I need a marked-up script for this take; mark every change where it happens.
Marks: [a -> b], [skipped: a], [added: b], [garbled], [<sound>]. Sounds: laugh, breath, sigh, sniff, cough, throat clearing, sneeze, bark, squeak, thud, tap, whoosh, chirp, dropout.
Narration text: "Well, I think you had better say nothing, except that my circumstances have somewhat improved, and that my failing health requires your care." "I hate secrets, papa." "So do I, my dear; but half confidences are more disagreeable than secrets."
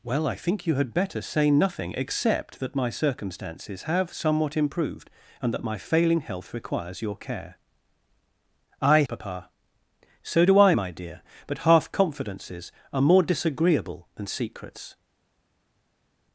"Well, I think you had better say nothing, except that my circumstances have somewhat improved, and that my failing health requires your care." "I [skipped: hate secrets,] papa." "So do I, my dear; but half confidences are more disagreeable than secrets."